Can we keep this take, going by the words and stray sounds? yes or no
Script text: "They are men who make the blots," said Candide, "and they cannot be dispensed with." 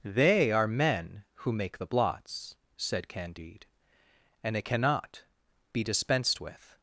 no